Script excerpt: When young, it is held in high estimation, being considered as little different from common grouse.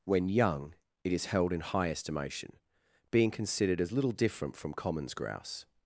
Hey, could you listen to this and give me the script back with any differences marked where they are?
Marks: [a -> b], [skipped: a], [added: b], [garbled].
When young, it is held in high estimation, being considered as little different from [common -> commons] grouse.